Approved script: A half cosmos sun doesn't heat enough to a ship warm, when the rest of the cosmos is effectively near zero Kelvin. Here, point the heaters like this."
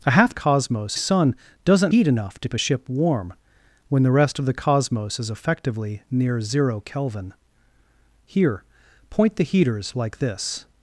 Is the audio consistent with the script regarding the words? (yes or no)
yes